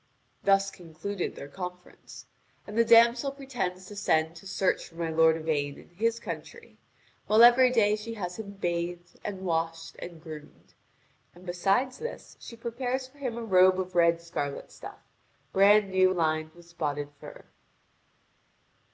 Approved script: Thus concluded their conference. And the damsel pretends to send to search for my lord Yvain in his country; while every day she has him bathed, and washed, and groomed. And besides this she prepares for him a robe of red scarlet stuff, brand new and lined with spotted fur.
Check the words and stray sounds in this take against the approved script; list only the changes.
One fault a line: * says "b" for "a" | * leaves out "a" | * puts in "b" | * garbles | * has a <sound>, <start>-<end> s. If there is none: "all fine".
* leaves out "and"